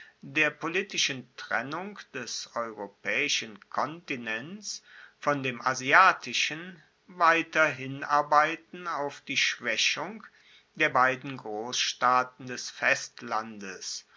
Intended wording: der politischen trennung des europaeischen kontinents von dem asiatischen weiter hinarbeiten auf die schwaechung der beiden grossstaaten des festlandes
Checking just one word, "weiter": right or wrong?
right